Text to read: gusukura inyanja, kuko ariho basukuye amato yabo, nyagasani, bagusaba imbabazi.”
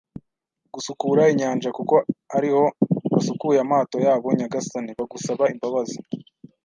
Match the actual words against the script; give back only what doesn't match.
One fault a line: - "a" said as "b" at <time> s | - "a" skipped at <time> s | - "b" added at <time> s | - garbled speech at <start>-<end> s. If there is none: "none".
none